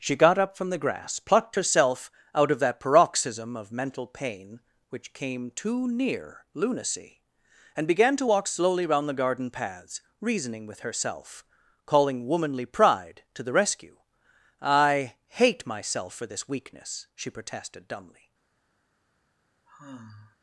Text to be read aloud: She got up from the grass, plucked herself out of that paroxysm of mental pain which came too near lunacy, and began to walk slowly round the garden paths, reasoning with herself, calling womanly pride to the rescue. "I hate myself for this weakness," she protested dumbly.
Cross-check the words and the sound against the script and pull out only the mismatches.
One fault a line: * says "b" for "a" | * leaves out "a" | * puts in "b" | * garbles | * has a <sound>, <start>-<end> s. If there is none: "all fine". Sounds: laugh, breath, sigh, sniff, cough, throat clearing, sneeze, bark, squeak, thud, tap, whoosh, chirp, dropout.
* has a sigh, 19.7-20.4 s